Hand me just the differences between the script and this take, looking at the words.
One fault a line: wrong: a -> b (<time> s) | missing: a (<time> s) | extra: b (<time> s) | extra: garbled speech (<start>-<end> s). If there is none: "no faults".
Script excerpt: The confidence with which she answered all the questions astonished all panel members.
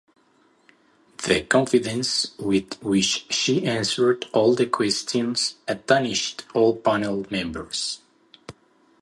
no faults